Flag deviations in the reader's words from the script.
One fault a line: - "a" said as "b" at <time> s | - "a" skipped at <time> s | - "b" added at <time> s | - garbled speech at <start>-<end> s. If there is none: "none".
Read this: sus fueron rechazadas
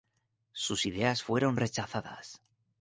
- "ideas" added at 0.9 s